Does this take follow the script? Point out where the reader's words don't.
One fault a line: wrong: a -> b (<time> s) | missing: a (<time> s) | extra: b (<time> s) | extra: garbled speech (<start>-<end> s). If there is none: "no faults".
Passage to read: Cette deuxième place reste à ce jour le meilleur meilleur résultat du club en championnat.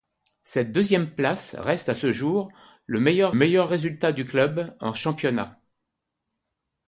no faults